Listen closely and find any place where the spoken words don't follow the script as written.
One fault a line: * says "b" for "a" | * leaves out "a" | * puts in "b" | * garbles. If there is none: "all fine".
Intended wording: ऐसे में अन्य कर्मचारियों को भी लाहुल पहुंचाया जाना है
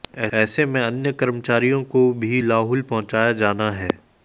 all fine